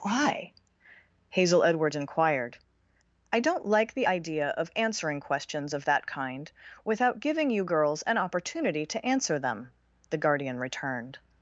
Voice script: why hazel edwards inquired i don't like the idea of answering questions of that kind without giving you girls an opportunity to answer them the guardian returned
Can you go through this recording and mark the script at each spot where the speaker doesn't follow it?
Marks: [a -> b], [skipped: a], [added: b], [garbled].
why hazel edwards inquired i don't like the idea of answering questions of that kind without giving you girls an opportunity to answer them the guardian returned